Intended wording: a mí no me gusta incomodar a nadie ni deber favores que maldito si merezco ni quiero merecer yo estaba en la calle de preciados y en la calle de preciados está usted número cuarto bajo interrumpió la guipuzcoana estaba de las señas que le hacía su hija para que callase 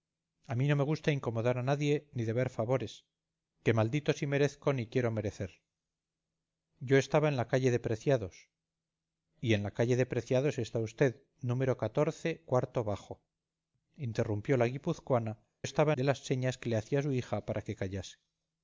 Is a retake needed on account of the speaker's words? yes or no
no